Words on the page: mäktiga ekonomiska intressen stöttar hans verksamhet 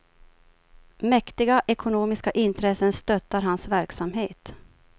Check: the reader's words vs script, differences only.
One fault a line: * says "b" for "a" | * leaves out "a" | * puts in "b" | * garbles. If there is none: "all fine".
all fine